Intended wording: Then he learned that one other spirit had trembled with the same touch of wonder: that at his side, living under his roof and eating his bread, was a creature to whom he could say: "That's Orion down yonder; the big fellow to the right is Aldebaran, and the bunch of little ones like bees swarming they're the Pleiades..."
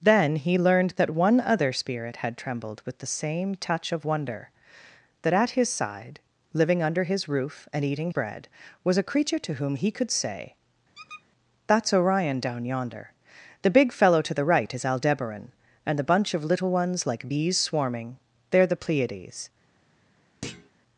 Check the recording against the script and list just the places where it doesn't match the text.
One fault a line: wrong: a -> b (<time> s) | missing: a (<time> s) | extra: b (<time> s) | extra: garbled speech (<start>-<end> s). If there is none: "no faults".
missing: his (8.1 s)